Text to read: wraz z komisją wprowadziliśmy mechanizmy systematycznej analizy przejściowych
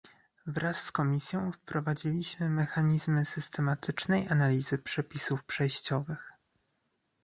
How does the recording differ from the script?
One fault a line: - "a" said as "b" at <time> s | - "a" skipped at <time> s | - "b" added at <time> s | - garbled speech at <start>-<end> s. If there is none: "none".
- "przepisów" added at 4.8 s